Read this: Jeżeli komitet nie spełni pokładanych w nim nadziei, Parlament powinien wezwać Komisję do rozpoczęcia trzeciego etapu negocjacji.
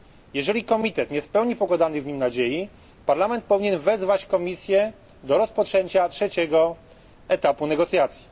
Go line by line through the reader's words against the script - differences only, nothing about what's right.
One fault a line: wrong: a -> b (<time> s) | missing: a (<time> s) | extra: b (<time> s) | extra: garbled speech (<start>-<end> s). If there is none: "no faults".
no faults